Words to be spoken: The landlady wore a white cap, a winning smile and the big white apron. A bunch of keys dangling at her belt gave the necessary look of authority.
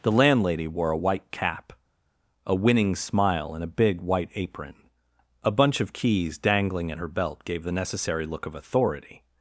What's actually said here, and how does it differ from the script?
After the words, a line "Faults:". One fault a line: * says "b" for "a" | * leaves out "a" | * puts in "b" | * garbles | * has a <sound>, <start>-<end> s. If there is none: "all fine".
The landlady wore a white cap, a winning smile and a big white apron. A bunch of keys dangling at her belt gave the necessary look of authority.
Faults:
* says "a" for "the"